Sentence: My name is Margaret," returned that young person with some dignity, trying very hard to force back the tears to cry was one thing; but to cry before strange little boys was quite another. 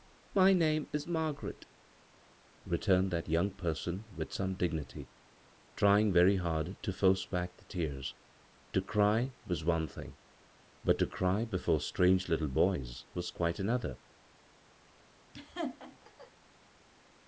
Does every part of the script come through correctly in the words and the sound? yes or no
no